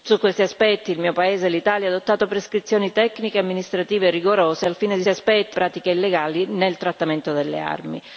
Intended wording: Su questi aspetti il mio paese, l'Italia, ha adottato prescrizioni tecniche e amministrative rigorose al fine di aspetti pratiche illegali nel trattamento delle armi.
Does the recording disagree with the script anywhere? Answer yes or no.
no